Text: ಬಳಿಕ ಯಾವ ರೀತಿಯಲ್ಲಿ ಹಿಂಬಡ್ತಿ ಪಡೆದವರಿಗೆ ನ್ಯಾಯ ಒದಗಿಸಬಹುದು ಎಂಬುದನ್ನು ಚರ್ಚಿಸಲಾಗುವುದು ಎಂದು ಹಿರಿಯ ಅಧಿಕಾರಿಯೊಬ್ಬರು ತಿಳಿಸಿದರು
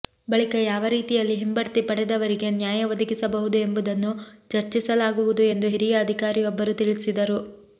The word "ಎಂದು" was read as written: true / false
true